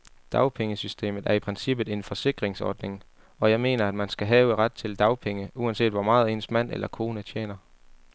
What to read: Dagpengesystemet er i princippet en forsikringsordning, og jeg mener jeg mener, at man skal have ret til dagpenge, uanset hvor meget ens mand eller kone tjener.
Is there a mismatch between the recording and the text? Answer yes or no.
yes